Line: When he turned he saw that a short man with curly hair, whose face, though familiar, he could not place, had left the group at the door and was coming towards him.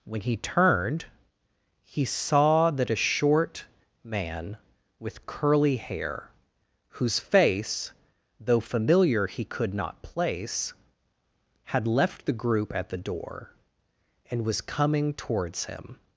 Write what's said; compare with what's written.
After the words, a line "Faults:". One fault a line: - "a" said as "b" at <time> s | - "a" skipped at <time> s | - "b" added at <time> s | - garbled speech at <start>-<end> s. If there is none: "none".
When he turned he saw that a short man with curly hair, whose face, though familiar, he could not place, had left the group at the door and was coming towards him.
Faults:
none